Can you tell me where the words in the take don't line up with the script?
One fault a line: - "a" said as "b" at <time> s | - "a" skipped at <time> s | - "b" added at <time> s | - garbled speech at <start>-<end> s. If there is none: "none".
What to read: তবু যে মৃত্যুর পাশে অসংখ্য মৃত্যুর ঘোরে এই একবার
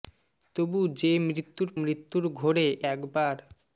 - "পাশে অসংখ্য" skipped at 1.7 s
- "এই" skipped at 2.7 s